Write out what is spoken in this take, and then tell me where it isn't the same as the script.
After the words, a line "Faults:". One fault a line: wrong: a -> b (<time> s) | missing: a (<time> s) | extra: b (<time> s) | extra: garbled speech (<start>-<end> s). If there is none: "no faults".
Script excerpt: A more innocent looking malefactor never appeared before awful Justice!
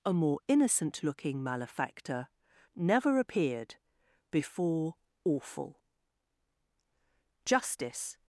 A more innocent looking malefactor never appeared before awful Justice!
Faults:
no faults